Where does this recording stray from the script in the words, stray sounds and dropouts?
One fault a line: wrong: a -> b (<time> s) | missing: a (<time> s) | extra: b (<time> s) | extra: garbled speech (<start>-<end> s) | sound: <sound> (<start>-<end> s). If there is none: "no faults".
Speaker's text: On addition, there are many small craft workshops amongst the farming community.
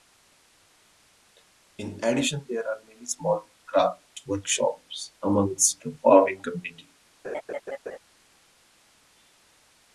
wrong: On -> In (1.8 s)
sound: laugh (7.2-8.0 s)